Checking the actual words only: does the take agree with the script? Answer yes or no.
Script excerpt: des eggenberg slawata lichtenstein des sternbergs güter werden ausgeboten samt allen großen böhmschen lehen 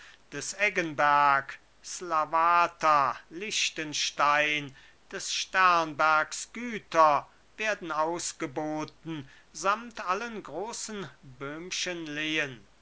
yes